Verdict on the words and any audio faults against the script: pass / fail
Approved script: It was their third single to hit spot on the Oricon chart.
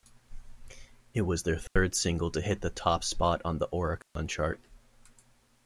fail